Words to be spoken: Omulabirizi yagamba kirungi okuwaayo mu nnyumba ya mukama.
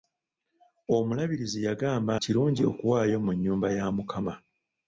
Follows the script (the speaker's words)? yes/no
yes